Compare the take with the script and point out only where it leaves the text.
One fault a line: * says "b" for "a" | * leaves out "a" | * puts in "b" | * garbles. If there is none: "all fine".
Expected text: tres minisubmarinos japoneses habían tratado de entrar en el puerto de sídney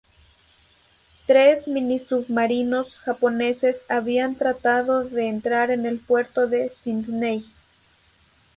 all fine